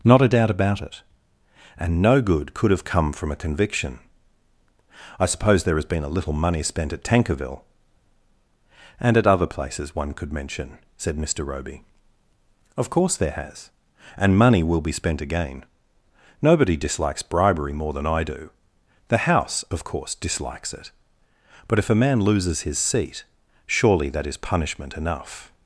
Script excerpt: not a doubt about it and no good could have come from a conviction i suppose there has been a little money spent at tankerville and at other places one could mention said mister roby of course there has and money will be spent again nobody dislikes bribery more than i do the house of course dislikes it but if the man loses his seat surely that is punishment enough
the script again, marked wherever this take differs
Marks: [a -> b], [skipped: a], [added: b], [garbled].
not a doubt about it and no good could have come from a conviction i suppose there has been a little money spent at tankerville and at other places one could mention said mister roby of course there has and money will be spent again nobody dislikes bribery more than i do the house of course dislikes it but if [the -> a] man loses his seat surely that is punishment enough